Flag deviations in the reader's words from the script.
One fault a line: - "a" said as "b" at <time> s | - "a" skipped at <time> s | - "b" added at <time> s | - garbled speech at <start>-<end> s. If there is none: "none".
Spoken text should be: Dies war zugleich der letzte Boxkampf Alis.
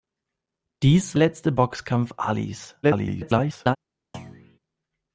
- "war zugleich der" skipped at 1.2 s
- garbled speech at 2.8-3.8 s